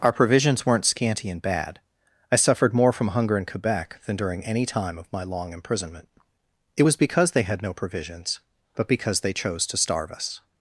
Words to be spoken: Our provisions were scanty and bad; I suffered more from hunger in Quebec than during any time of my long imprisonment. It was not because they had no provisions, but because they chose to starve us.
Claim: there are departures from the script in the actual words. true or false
true